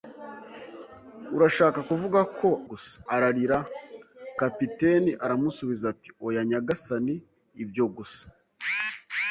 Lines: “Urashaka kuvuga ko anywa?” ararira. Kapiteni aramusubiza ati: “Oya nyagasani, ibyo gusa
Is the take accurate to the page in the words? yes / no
no